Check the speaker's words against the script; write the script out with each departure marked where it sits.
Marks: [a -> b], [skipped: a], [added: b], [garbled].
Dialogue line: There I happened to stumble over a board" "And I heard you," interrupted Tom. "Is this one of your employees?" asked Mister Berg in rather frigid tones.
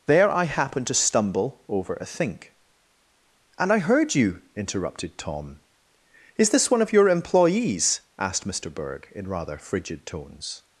There I happened to stumble over a [board" -> think] "And I heard you," interrupted Tom. "Is this one of your employees?" asked Mister Berg in rather frigid tones.